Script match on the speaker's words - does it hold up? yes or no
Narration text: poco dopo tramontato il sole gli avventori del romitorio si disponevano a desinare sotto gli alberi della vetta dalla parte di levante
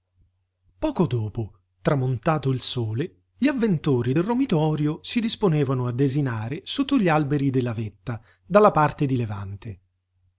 yes